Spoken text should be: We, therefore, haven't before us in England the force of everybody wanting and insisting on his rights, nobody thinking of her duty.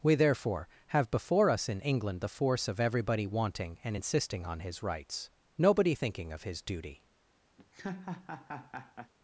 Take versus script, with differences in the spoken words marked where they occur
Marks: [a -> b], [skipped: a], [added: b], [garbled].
We, therefore, [haven't -> have] before us in England the force of everybody wanting and insisting on his rights, nobody thinking of [her -> his] duty.